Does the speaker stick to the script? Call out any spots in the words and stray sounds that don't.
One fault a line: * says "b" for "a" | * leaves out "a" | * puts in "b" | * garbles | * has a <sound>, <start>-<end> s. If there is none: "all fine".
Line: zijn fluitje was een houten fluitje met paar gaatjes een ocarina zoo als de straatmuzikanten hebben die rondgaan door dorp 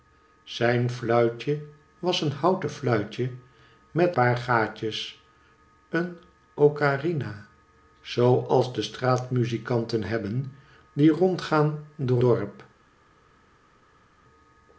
all fine